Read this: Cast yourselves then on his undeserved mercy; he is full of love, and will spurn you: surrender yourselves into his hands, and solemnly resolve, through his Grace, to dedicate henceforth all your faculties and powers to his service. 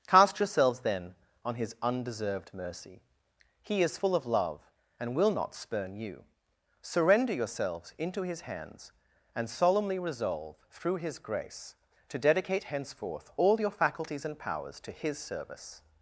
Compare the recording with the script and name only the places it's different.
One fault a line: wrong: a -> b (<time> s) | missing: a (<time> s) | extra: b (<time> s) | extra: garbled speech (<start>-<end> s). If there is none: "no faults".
extra: not (5.3 s)